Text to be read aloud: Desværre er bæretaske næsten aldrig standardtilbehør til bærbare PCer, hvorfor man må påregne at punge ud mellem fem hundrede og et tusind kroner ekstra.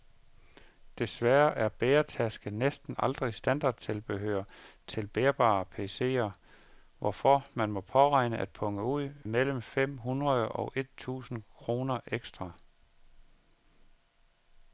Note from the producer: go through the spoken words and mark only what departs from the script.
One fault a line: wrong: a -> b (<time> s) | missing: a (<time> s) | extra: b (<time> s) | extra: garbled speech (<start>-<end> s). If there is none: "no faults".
no faults